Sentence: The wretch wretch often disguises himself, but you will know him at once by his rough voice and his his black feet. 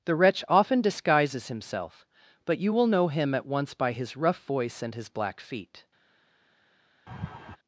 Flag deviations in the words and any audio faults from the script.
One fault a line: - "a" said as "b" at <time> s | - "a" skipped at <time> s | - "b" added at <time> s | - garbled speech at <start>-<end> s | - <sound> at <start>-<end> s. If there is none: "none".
- "wretch" skipped at 0.4 s
- "his" skipped at 5.1 s
- laugh at 7.1-7.6 s